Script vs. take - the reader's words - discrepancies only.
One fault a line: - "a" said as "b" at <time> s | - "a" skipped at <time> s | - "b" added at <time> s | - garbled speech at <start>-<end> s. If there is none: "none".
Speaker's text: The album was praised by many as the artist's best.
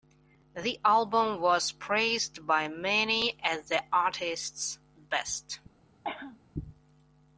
none